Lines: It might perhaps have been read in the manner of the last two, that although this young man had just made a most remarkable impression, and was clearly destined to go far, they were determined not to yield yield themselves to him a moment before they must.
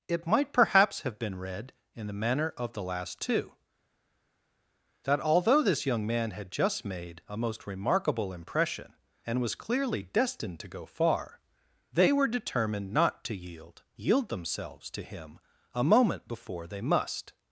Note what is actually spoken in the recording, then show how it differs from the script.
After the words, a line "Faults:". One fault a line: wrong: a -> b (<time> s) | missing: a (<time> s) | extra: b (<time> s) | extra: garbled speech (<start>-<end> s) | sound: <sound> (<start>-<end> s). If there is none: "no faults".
It might perhaps have been read in the manner of the last two, that although this young man had just made a most remarkable impression, and was clearly destined to go far, they were determined not to yield yield themselves to him a moment before they must.
Faults:
no faults